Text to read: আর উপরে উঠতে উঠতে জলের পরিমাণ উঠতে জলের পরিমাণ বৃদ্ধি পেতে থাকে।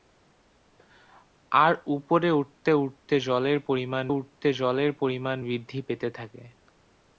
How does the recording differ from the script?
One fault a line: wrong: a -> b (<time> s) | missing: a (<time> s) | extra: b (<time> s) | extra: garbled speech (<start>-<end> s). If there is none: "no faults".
no faults